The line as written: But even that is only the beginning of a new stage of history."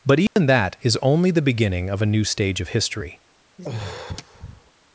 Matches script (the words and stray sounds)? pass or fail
fail